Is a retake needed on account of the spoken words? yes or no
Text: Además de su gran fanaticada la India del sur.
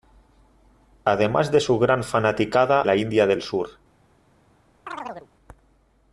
no